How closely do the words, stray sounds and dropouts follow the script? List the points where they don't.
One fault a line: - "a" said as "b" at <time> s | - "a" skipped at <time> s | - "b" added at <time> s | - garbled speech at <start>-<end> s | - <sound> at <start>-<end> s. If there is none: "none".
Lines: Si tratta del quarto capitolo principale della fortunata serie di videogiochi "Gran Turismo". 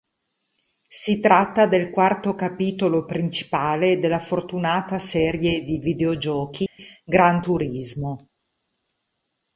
- dropout at 6.7-6.8 s